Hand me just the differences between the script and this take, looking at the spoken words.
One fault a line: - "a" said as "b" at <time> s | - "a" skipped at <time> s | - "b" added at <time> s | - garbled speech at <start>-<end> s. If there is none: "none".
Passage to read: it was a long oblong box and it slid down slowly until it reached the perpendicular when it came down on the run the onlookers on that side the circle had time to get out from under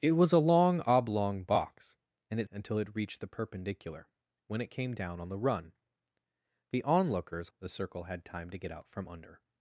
- "slid down slowly" skipped at 2.5 s
- "on that side" skipped at 7.5 s